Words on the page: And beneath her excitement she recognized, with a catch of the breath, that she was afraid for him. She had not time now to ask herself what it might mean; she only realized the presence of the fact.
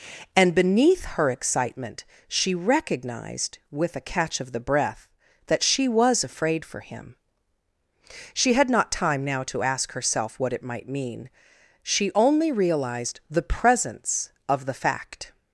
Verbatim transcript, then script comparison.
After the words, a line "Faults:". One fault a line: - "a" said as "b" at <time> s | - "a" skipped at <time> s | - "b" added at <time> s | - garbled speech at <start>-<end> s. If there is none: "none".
And beneath her excitement she recognized, with a catch of the breath, that she was afraid for him. She had not time now to ask herself what it might mean; she only realized the presence of the fact.
Faults:
none